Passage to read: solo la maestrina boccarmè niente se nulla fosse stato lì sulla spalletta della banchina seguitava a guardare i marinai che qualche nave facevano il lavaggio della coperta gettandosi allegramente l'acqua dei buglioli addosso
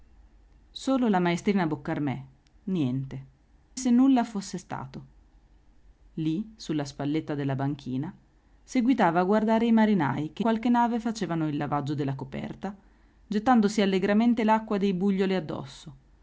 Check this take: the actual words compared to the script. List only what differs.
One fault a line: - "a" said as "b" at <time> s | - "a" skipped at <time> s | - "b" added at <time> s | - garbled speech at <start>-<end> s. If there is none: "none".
none